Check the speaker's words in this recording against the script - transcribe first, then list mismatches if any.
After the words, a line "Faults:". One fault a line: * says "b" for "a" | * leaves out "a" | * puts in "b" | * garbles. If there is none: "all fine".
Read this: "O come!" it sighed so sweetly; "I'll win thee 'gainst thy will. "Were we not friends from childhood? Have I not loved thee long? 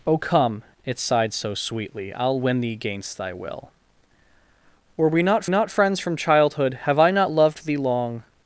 "O come!" it sighed so sweetly; "I'll win thee 'gainst thy will. "Were we not not friends from childhood? Have I not loved thee long?
Faults:
* puts in "not"